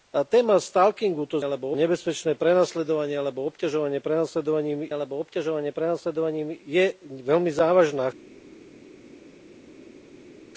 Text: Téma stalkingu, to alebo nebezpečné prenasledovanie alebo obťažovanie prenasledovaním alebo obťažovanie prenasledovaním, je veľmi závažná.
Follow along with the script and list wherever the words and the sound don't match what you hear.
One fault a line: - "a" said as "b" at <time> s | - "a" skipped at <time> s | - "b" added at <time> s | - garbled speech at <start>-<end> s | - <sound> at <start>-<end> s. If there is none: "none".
none